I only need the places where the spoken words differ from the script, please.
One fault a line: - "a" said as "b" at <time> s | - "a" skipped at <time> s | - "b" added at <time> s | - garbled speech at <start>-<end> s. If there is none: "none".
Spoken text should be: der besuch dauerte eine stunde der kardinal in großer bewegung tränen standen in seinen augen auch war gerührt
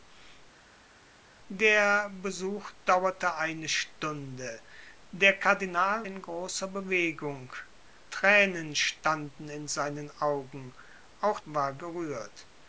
none